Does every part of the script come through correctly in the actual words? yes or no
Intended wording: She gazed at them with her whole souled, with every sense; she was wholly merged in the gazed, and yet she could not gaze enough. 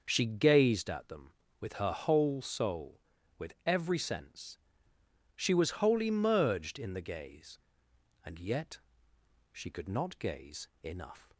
no